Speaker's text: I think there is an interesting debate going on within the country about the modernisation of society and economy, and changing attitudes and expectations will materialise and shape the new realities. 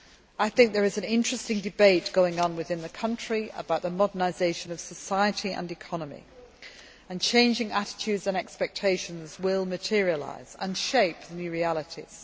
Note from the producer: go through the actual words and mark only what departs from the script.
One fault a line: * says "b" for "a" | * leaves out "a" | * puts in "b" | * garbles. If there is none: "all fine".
all fine